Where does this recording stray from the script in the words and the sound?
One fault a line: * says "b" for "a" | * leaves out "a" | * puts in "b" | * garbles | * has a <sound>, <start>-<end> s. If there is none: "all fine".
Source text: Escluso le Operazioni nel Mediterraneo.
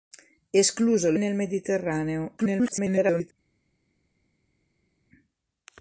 * leaves out "Operazioni"
* garbles